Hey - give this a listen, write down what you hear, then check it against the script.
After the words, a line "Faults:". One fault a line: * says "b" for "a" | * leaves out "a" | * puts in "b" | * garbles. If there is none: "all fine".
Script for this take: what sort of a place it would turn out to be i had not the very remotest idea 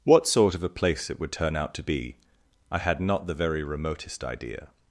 what sort of a place it would turn out to be i had not the very remotest idea
Faults:
all fine